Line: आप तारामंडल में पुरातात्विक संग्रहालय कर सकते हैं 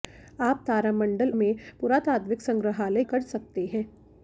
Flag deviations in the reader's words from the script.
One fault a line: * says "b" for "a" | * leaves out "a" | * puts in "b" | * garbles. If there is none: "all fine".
all fine